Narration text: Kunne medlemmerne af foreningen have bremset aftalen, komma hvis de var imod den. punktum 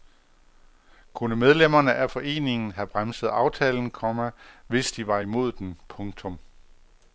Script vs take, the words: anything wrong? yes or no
no